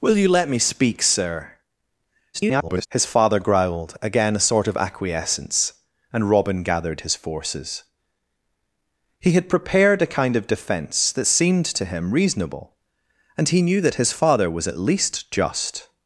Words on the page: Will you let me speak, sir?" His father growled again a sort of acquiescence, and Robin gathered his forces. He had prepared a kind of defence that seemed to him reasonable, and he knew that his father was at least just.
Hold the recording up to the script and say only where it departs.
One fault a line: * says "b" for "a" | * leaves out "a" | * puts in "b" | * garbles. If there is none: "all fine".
* garbles